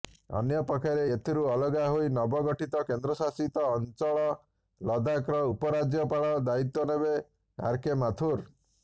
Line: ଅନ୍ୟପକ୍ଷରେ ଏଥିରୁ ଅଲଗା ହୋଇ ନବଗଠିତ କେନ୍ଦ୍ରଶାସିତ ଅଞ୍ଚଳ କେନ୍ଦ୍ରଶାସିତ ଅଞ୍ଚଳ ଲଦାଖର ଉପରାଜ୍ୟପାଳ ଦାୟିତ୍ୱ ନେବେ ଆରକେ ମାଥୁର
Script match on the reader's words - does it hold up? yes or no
no